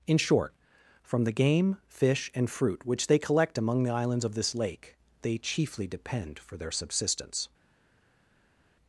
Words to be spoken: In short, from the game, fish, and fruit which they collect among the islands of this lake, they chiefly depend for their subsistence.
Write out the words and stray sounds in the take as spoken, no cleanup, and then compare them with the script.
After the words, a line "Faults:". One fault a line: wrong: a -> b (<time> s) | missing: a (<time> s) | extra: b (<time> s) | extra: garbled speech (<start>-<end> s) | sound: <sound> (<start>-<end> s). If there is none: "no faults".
In short, from the game, fish, and fruit which they collect among the islands of this lake, they chiefly depend for their subsistence.
Faults:
no faults